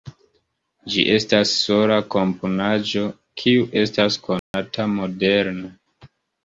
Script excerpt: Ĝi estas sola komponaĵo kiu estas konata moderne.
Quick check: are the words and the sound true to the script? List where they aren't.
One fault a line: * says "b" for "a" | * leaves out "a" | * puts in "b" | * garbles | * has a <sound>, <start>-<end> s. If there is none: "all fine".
* has a dropout, 4.4-4.5 s